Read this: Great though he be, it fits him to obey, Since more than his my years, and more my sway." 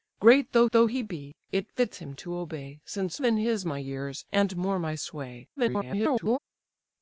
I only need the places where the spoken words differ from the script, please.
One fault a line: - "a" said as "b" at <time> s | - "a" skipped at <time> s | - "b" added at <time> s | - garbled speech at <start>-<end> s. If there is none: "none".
- "though" added at 0.7 s
- "more" skipped at 3.2 s
- garbled speech at 5.6-6.4 s